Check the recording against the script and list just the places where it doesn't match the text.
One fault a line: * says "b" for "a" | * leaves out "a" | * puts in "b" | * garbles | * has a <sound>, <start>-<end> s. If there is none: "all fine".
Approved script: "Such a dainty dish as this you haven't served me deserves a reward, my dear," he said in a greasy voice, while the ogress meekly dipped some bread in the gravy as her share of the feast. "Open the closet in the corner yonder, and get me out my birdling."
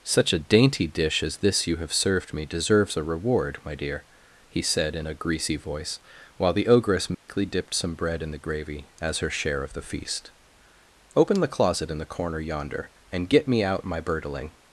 * says "have" for "haven't"
* has a dropout, 7.1-7.3 s